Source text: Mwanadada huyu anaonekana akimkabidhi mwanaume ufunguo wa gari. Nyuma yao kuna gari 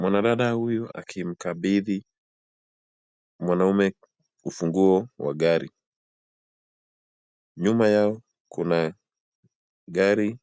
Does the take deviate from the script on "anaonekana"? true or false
true